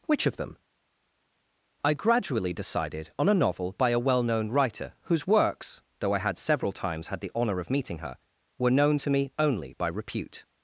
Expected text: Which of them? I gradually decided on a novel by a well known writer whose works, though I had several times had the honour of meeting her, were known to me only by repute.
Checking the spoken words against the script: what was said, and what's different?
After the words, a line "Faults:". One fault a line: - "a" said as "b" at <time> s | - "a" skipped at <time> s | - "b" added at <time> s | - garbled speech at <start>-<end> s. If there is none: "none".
Which of them? I gradually decided on a novel by a well known writer whose works, though I had several times had the honour of meeting her, were known to me only by repute.
Faults:
none